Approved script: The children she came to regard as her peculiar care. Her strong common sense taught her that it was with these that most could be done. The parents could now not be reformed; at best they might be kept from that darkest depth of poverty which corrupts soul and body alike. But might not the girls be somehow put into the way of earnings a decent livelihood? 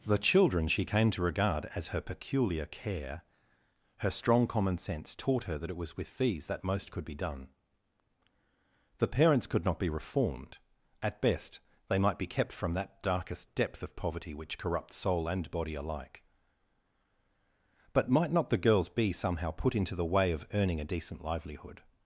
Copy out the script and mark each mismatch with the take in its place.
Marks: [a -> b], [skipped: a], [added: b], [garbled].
The children she came to regard as her peculiar care. Her strong common sense taught her that it was with these that most could be done. The parents could [skipped: now] not be reformed; at best they might be kept from that darkest depth of poverty which corrupts soul and body alike. But might not the girls be somehow put into the way of [earnings -> earning] a decent livelihood?